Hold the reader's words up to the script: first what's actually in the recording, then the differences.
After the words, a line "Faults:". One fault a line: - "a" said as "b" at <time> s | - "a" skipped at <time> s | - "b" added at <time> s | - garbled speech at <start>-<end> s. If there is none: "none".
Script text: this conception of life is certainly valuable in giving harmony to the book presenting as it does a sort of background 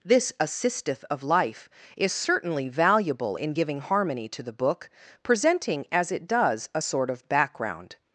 this assisteth of life is certainly valuable in giving harmony to the book presenting as it does a sort of background
Faults:
- "conception" said as "assisteth" at 0.4 s